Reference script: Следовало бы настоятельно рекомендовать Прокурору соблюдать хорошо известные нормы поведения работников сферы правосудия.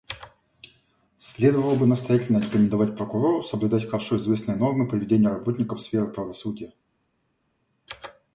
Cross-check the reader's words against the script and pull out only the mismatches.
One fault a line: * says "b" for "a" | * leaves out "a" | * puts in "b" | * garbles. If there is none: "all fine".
all fine